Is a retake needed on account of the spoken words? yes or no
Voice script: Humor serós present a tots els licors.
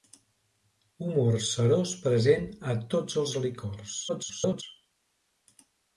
yes